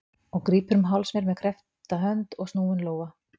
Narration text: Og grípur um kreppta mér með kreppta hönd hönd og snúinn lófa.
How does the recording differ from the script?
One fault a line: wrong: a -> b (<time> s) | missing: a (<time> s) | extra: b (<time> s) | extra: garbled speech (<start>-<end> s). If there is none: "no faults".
wrong: kreppta -> háls (0.9 s)
missing: hönd (2.4 s)